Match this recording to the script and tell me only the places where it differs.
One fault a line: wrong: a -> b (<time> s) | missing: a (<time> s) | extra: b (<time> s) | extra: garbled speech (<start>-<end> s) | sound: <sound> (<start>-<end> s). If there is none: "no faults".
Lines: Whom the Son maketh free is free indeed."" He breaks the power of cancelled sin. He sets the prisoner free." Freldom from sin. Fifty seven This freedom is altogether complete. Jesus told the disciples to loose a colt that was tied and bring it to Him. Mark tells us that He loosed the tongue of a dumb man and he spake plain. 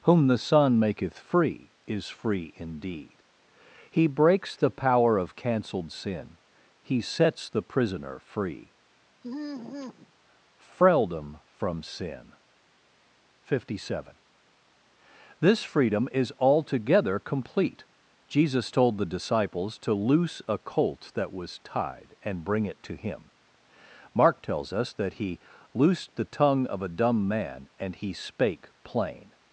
sound: sigh (9.2-10.1 s)